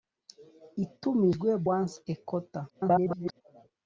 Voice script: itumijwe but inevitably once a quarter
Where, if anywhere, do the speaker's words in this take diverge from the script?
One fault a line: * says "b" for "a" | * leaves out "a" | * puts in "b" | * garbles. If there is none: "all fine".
* leaves out "but inevitably"
* garbles